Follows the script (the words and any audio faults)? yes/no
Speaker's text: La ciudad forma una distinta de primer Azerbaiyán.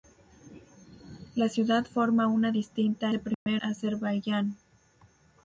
no